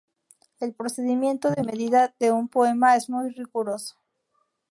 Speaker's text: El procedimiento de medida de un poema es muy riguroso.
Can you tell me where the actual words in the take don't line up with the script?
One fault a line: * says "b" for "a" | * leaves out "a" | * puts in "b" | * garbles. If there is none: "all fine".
all fine